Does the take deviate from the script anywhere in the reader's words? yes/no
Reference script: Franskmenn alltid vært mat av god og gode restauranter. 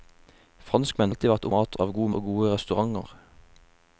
no